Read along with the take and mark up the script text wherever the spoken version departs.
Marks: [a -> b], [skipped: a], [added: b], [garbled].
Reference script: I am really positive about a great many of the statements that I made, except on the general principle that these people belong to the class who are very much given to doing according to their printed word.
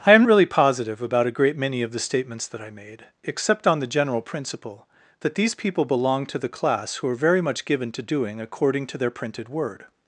I am really positive about a great many of the statements that I made, except on the general principle that these people belong to the class who are very much given to doing according to their printed word.